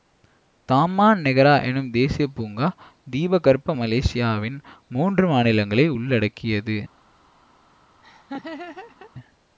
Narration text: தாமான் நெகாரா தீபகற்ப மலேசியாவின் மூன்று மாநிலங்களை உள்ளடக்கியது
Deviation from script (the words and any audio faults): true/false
true